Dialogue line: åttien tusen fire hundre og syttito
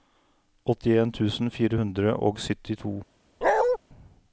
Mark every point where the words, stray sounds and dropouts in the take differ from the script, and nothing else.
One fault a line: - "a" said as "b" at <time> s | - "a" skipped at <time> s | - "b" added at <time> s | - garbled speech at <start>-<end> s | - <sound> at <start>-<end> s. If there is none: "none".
- bark at 3.4-3.8 s